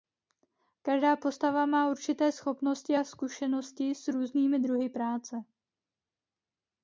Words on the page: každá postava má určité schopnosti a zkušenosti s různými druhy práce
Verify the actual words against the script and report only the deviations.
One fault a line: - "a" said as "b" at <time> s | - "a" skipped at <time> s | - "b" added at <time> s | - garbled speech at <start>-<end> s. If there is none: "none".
none